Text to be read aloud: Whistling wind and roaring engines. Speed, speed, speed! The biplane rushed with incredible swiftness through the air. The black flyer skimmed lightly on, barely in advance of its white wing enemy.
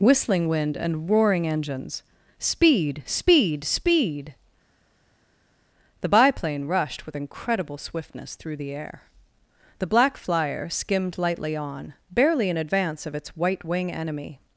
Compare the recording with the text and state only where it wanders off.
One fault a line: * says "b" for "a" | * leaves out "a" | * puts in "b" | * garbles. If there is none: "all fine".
all fine